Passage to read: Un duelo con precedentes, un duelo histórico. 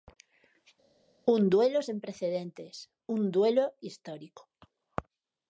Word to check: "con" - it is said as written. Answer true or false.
false